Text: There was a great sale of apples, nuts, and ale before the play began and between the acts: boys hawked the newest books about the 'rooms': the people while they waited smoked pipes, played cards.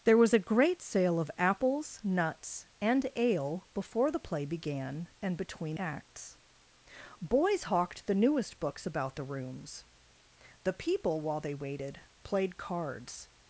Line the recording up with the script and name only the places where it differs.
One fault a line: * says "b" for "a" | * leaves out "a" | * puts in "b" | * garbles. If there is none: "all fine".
* leaves out "the"
* leaves out "smoked pipes"